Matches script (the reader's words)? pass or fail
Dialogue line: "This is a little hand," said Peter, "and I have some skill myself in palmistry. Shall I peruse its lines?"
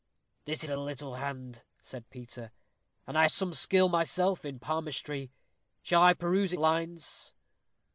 fail